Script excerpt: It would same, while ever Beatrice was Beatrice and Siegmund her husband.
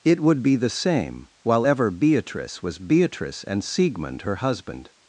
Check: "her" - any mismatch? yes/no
no